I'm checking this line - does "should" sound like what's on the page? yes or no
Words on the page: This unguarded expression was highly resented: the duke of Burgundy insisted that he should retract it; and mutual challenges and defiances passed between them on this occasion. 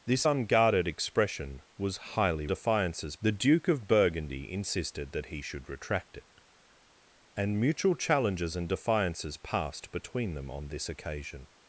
yes